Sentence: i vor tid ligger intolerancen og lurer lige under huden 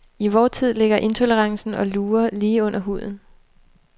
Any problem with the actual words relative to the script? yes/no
no